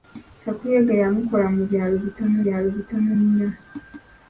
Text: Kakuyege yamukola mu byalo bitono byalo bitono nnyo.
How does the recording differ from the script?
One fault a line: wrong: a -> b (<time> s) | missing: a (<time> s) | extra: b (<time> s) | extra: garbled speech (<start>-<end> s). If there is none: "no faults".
no faults